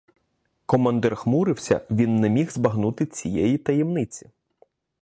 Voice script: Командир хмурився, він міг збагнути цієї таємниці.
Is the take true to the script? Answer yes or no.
no